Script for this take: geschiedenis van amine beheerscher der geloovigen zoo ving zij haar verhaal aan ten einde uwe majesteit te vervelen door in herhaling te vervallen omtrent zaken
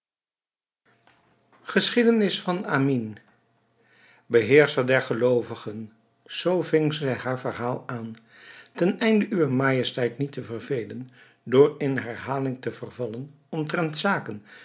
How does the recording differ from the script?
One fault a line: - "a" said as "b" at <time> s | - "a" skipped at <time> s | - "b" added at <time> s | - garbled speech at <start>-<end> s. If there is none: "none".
- "niet" added at 10.2 s